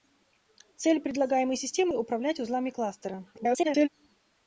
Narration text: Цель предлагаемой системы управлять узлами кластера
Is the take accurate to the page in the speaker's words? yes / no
no